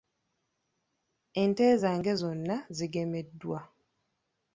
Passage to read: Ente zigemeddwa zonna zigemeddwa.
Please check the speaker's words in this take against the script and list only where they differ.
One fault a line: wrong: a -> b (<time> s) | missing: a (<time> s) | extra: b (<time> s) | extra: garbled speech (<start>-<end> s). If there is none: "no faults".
wrong: zigemeddwa -> zange (1.8 s)